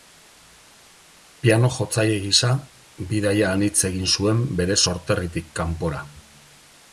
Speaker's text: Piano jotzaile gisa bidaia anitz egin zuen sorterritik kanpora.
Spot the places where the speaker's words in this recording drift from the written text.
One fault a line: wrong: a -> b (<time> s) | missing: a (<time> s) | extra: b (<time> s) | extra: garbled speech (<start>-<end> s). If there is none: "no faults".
extra: bere (4.6 s)